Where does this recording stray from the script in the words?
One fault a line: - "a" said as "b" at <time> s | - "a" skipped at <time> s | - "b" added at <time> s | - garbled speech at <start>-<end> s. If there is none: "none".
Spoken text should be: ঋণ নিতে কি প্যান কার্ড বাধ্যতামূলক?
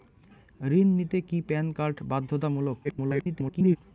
- garbled speech at 2.8-3.8 s